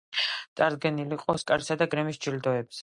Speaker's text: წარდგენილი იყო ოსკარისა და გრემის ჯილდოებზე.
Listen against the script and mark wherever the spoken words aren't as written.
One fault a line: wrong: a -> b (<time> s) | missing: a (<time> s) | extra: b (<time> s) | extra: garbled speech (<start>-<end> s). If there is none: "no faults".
no faults